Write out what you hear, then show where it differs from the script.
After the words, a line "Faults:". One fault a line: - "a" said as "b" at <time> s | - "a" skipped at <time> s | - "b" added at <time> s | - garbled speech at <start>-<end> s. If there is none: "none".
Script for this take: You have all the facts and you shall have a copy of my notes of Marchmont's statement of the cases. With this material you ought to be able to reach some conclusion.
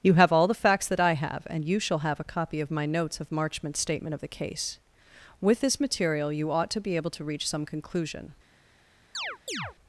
You have all the facts that I have and you shall have a copy of my notes of Marchmont's statement of the case. With this material you ought to be able to reach some conclusion.
Faults:
- "that I have" added at 0.9 s
- "cases" said as "case" at 4.3 s